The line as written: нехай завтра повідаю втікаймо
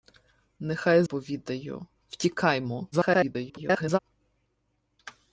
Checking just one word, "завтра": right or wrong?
wrong